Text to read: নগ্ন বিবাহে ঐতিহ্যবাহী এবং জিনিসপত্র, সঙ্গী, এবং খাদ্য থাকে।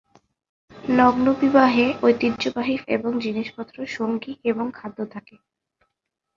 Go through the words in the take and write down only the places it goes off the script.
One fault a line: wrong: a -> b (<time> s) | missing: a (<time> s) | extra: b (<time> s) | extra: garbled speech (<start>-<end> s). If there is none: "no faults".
no faults